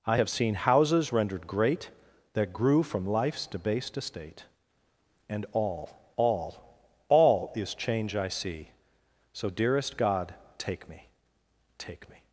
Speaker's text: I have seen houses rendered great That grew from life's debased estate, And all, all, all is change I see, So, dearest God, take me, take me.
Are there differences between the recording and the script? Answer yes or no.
no